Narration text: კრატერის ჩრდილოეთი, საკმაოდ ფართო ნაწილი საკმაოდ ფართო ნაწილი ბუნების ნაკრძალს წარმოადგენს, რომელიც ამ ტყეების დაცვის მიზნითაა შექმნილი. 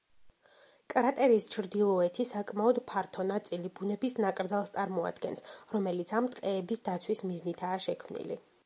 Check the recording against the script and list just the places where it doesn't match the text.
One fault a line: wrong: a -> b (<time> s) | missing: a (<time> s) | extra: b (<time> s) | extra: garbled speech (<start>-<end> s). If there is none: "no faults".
missing: საკმაოდ ფართო ნაწილი (3.7 s)